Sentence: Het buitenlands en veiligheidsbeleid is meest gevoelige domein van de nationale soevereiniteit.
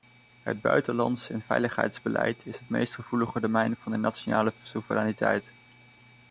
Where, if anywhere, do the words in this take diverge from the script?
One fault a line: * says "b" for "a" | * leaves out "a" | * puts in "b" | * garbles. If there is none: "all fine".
* puts in "het"